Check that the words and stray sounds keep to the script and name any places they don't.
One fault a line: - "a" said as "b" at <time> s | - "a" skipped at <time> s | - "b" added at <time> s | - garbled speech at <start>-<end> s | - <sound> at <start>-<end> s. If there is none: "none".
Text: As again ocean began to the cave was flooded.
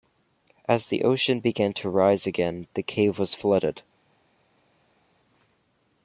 - "again" said as "the" at 0.9 s
- "rise again" added at 1.9 s